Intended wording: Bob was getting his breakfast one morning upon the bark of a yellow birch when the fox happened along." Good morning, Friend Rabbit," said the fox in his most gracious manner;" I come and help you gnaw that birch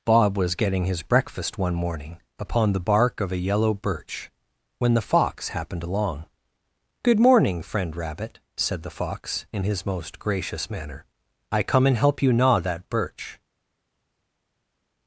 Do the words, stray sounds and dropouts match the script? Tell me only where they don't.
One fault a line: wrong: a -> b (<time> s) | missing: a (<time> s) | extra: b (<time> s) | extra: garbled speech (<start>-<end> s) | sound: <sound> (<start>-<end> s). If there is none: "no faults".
no faults